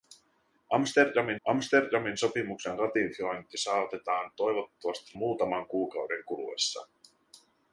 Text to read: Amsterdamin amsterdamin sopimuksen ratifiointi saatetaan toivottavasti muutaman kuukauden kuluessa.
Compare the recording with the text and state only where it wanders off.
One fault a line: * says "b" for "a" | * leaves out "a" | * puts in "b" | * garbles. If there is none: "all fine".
all fine